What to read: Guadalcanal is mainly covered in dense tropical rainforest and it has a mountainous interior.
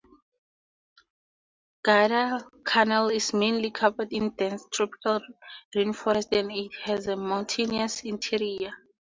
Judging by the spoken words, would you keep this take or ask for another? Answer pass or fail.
pass